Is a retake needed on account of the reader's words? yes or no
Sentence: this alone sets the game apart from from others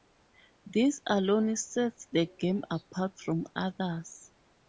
yes